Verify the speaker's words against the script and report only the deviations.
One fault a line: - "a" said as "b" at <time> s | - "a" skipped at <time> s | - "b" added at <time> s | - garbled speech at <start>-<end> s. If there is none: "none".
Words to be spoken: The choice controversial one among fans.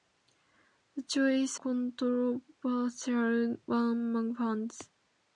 none